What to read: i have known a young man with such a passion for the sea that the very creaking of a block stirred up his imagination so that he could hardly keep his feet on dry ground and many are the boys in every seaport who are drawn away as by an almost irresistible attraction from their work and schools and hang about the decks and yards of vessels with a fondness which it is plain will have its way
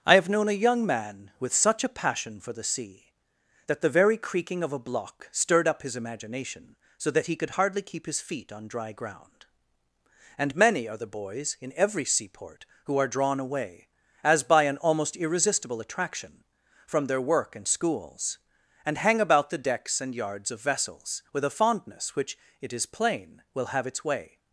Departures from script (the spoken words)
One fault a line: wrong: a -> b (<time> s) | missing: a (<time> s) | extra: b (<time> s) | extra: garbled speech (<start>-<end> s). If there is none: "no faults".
no faults